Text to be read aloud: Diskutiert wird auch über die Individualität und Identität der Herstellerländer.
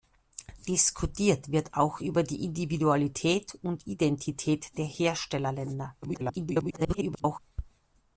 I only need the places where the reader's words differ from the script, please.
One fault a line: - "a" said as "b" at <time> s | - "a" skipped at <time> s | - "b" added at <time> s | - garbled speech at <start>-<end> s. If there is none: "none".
- garbled speech at 6.0-7.4 s